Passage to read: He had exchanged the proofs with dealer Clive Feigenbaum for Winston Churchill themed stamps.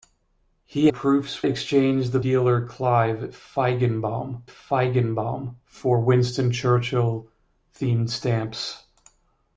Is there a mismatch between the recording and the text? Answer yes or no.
yes